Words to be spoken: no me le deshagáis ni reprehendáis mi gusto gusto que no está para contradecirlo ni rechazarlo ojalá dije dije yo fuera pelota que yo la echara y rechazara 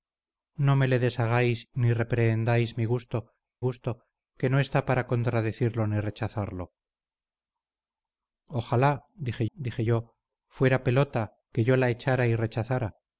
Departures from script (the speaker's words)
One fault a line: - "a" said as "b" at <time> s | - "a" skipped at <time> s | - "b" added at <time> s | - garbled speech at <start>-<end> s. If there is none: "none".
none